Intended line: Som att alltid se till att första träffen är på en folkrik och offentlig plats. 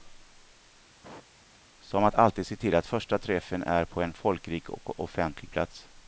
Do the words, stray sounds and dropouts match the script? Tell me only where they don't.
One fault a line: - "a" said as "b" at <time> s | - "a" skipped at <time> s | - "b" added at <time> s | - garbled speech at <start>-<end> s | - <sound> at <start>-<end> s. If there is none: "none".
- sneeze at 1.0-1.6 s